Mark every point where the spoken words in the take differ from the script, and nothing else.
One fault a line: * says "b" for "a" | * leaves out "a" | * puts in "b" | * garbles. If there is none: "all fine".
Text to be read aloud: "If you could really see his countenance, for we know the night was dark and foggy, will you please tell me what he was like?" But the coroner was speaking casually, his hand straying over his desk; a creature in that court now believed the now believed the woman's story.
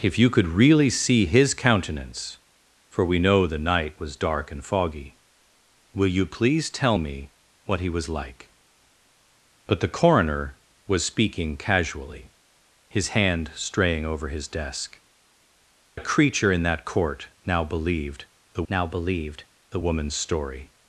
all fine